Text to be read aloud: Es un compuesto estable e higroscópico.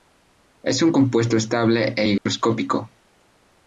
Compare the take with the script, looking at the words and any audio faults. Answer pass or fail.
fail